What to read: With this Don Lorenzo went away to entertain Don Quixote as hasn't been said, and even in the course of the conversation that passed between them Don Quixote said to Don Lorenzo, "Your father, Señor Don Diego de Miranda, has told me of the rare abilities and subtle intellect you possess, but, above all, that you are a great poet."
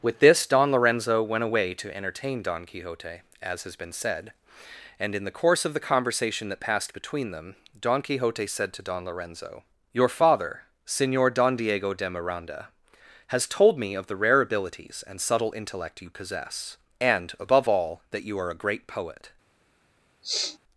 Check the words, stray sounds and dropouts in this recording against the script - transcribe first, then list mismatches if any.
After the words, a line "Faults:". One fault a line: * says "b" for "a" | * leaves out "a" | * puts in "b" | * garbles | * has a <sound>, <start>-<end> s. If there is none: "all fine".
With this Don Lorenzo went away to entertain Don Quixote as has been said, and in the course of the conversation that passed between them Don Quixote said to Don Lorenzo, "Your father, Señor Don Diego de Miranda, has told me of the rare abilities and subtle intellect you possess, and, above all, that you are a great poet."
Faults:
* says "has" for "hasn't"
* leaves out "even"
* says "and" for "but"
* has a sniff, 20.2-20.6 s